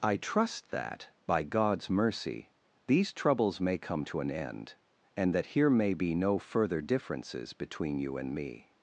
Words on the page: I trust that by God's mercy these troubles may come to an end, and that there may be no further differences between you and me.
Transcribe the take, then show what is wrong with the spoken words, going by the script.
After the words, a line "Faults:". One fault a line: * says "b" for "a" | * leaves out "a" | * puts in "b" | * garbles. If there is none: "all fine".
I trust that by God's mercy these troubles may come to an end, and that here may be no further differences between you and me.
Faults:
* says "here" for "there"